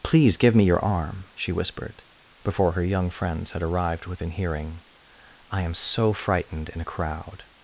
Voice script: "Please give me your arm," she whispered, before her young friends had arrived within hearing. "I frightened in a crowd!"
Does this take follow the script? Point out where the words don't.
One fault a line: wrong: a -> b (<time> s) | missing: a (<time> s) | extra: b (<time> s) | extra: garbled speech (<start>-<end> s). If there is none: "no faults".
extra: am so (5.6 s)